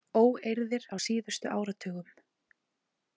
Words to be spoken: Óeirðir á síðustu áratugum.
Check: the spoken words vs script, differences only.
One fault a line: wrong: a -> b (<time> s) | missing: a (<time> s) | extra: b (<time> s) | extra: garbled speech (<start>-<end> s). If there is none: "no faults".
no faults